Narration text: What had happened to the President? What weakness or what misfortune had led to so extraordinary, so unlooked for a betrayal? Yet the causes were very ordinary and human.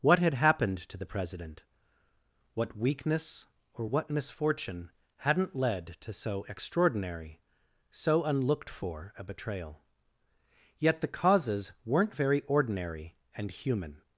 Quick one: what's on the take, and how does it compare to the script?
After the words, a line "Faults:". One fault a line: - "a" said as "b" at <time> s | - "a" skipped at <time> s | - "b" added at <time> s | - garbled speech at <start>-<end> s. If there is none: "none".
What had happened to the President? What weakness or what misfortune hadn't led to so extraordinary, so unlooked for a betrayal? Yet the causes weren't very ordinary and human.
Faults:
- "had" said as "hadn't" at 5.2 s
- "were" said as "weren't" at 11.8 s